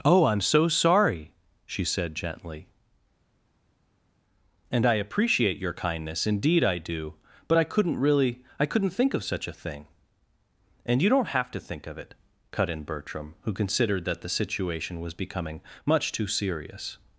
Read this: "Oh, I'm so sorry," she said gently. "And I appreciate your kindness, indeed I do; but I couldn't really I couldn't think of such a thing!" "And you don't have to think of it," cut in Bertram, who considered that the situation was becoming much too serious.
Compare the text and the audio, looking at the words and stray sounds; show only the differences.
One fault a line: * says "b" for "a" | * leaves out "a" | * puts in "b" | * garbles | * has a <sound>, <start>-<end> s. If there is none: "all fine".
all fine